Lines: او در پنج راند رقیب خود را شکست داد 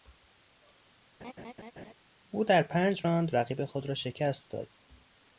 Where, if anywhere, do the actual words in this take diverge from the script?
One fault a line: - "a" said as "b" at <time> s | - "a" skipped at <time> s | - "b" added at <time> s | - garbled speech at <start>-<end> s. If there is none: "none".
none